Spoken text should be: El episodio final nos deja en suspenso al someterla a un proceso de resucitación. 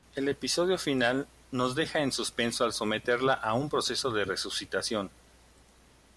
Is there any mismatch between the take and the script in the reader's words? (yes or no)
no